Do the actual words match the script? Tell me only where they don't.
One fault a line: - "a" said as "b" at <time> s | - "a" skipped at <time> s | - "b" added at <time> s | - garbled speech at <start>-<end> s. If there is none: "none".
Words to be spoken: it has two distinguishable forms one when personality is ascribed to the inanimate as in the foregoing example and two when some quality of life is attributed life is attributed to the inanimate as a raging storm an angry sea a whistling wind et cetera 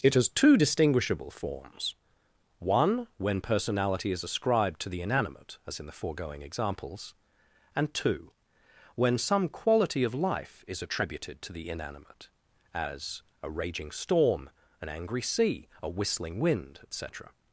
- "example" said as "examples" at 6.4 s
- "life is attributed" skipped at 11.4 s